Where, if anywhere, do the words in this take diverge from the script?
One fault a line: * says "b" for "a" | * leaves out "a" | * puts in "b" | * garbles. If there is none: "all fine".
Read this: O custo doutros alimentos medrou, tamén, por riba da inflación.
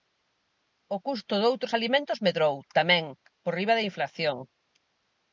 all fine